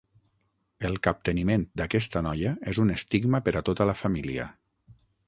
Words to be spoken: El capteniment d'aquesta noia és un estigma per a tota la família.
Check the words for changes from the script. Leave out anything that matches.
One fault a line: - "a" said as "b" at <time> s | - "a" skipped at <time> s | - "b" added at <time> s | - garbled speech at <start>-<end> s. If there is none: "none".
none